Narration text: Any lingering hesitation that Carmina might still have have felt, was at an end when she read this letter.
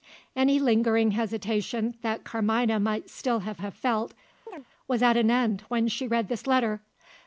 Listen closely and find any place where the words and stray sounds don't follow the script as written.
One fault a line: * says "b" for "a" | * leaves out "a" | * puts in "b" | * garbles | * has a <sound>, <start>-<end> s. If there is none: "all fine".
* has a chirp, 4.5-4.7 s